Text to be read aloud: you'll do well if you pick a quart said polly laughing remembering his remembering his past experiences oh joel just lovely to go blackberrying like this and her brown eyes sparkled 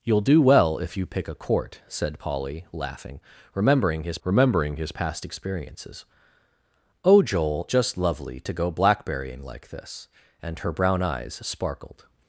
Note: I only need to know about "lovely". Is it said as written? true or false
true